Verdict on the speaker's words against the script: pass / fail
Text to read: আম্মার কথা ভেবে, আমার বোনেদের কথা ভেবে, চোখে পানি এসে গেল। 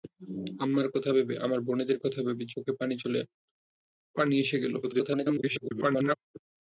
fail